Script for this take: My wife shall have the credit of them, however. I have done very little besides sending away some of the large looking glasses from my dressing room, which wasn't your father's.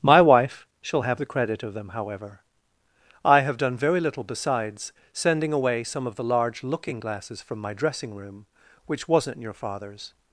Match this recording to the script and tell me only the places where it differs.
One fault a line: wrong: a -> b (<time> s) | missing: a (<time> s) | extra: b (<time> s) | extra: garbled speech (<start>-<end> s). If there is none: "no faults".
no faults